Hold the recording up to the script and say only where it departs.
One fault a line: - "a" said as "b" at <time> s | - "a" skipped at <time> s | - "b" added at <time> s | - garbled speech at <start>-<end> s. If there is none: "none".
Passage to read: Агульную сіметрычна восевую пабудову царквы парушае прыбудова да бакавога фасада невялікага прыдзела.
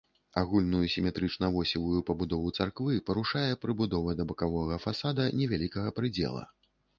none